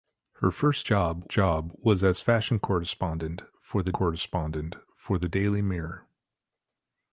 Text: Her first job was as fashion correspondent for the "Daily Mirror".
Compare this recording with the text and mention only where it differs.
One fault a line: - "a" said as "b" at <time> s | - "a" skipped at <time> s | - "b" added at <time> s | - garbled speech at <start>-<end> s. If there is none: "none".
- "job" added at 1.3 s
- "correspondent for the" added at 3.9 s